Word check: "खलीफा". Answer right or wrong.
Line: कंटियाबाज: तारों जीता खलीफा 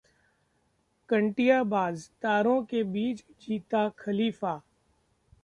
right